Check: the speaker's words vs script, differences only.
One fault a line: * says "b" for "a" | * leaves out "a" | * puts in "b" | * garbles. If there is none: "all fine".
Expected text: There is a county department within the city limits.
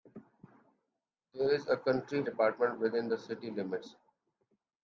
all fine